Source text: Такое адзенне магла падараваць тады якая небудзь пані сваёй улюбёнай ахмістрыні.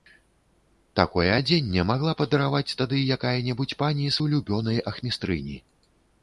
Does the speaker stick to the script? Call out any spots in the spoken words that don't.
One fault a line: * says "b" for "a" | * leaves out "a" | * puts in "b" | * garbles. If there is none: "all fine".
* leaves out "сваёй"